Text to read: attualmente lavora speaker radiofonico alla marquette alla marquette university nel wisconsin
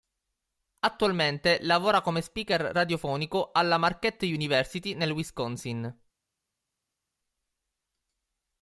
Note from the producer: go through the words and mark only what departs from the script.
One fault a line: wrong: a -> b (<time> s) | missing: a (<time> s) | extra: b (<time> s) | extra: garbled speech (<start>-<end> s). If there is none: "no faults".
extra: come (2.0 s)
missing: alla marquette (4.3 s)